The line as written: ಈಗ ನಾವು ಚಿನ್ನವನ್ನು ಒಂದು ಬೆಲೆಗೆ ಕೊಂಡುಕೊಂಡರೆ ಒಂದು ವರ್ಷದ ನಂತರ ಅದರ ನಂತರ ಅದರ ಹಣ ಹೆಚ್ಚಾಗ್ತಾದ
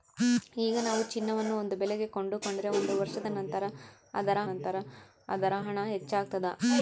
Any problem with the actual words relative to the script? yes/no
no